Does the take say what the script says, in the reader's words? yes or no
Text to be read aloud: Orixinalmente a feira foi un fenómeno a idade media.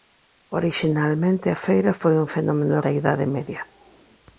yes